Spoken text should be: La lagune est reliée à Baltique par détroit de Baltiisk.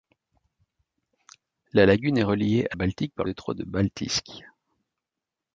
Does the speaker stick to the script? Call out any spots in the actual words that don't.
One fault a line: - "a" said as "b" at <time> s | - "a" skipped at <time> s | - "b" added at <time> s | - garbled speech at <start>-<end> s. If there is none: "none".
none